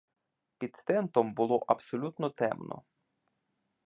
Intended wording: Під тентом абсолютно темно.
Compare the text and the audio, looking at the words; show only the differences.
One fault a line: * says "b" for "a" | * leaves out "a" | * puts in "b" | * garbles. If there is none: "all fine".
* puts in "було"